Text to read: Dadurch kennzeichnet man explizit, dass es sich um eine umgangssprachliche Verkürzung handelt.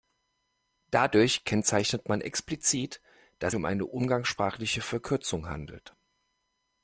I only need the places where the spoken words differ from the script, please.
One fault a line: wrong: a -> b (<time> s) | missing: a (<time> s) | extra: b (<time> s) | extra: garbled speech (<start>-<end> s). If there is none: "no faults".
missing: es sich (3.5 s)